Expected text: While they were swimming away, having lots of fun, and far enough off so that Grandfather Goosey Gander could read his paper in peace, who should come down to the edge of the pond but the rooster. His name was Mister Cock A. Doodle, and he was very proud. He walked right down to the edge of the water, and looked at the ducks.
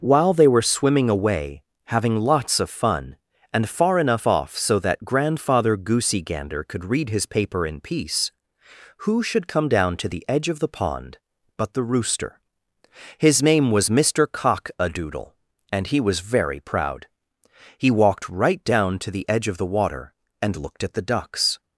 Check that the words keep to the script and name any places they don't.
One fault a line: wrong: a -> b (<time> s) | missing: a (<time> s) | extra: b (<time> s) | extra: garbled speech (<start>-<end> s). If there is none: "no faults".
no faults